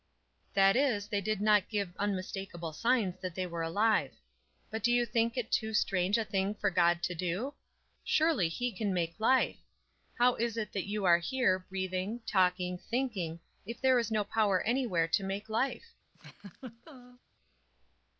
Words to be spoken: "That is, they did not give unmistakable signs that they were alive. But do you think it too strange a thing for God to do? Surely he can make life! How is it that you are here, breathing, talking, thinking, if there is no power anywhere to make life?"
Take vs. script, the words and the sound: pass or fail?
fail